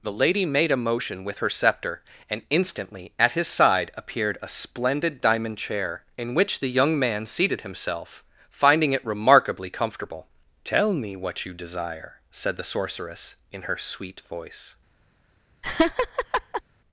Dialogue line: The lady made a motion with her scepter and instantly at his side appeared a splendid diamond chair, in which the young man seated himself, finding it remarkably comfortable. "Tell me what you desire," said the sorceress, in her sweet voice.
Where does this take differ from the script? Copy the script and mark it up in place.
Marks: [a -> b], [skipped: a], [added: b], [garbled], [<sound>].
The lady made a motion with her scepter and instantly at his side appeared a splendid diamond chair, in which the young man seated himself, finding it remarkably comfortable. "Tell me what you desire," said the sorceress, in her sweet voice. [laugh]